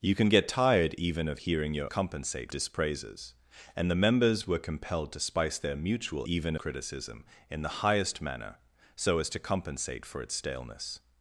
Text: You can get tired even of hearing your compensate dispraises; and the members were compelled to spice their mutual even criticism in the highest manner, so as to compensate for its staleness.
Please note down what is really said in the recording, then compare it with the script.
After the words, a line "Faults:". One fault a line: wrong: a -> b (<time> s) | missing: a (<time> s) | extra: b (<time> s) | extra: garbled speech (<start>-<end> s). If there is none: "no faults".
You can get tired even of hearing your compensate dispraises; and the members were compelled to spice their mutual even criticism in the highest manner, so as to compensate for its staleness.
Faults:
no faults